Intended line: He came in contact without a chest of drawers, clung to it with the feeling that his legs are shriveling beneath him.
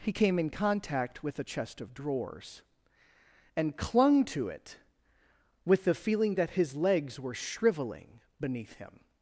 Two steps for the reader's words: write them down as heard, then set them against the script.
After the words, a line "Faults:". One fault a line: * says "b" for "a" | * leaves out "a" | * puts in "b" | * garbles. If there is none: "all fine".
He came in contact with a chest of drawers, and clung to it with the feeling that his legs were shriveling beneath him.
Faults:
* says "with" for "without"
* puts in "and"
* says "were" for "are"